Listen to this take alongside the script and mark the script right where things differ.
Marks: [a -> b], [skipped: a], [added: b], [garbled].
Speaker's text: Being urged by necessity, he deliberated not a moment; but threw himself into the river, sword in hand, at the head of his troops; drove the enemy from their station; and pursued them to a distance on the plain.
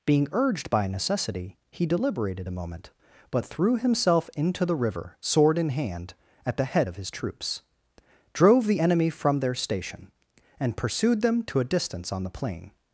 Being urged by necessity, he deliberated [skipped: not] a moment; but threw himself into the river, sword in hand, at the head of his troops; drove the enemy from their station; and pursued them to a distance on the plain.